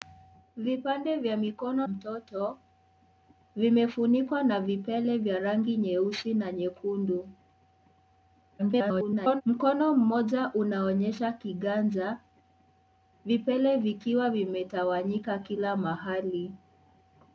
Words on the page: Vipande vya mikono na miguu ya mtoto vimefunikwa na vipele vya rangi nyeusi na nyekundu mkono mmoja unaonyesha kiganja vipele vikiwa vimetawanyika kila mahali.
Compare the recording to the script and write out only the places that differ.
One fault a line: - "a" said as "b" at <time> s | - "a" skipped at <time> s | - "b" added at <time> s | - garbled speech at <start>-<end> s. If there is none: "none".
- "na miguu ya" skipped at 1.9 s
- garbled speech at 8.6-9.4 s